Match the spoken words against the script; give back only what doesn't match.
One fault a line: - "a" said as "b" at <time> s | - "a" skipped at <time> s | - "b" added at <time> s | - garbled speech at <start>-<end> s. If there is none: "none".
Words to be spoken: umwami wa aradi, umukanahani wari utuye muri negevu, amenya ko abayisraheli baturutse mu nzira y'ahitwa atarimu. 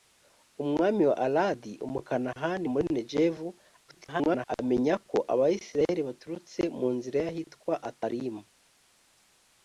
- "wari utuye" skipped at 2.6 s
- garbled speech at 3.9-4.5 s